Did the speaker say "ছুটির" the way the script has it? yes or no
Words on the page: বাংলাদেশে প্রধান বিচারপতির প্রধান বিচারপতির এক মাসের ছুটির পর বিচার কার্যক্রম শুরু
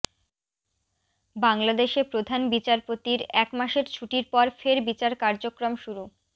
yes